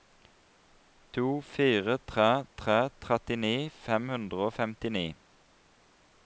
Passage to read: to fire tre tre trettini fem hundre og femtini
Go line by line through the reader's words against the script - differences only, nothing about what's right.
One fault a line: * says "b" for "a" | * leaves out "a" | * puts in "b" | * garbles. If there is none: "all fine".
all fine